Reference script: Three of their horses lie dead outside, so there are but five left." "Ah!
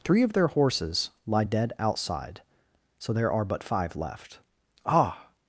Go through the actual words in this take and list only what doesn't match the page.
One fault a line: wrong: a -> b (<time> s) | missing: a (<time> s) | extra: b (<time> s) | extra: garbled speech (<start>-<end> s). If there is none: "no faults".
no faults